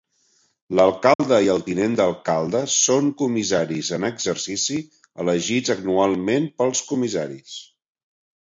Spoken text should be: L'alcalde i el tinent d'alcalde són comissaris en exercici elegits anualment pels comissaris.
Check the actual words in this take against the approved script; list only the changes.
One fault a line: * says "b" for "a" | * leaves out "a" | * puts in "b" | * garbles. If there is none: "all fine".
all fine